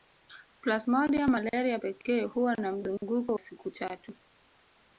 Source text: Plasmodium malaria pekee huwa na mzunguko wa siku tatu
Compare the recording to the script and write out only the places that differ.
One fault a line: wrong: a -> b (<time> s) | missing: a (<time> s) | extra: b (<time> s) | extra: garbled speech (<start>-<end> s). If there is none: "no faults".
missing: wa (3.4 s)